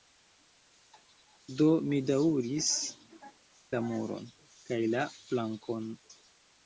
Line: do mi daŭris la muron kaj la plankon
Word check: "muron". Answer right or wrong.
right